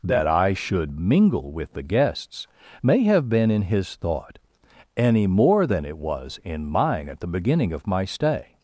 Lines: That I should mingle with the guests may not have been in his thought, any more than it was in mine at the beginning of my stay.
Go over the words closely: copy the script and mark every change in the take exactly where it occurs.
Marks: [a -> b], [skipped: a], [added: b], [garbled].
That I should mingle with the guests may [skipped: not] have been in his thought, any more than it was in mine at the beginning of my stay.